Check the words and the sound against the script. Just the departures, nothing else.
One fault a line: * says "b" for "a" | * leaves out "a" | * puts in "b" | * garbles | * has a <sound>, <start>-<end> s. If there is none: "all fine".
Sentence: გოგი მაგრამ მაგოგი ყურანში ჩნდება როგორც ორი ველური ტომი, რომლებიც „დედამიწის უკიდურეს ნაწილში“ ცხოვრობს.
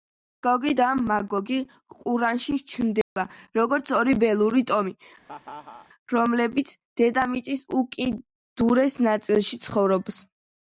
* says "და" for "მაგრამ"
* has a dropout, 3.0-3.2 s
* has a laugh, 5.2-5.9 s